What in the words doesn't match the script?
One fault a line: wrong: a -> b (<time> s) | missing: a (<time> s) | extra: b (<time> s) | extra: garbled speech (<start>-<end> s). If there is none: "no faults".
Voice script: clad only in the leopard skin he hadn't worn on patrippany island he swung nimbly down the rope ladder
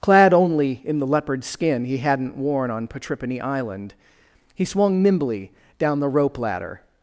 no faults